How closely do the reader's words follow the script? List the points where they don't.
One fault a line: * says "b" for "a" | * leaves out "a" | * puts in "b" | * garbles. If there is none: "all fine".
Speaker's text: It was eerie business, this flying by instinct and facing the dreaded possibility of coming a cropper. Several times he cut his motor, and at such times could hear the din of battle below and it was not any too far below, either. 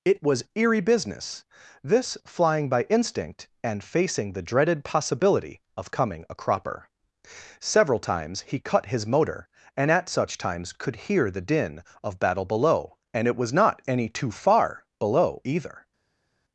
all fine